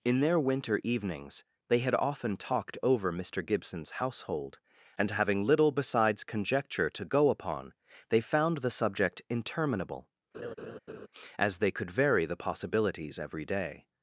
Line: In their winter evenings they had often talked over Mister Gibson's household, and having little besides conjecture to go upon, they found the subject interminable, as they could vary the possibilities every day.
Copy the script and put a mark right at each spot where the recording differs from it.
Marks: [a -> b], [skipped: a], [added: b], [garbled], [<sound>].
In their winter evenings they had often talked over Mister Gibson's household, and having little besides conjecture to go upon, they found the subject interminable, [laugh] as they could vary the possibilities every day.